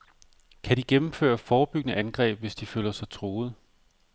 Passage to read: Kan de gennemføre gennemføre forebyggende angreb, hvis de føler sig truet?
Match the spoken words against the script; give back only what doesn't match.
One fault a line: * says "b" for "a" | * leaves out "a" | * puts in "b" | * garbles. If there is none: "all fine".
* leaves out "gennemføre"